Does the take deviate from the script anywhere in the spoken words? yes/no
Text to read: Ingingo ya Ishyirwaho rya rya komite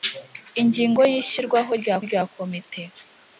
no